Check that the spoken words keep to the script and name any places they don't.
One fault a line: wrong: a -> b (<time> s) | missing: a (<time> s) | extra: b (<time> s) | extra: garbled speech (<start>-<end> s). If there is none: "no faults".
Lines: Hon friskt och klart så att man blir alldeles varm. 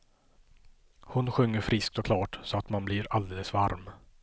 extra: sjunger (1.3 s)